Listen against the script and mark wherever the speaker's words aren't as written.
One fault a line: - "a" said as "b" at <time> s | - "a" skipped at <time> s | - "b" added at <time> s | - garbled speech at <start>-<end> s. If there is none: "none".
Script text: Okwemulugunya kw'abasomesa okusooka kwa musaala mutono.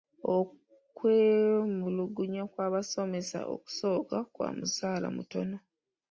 none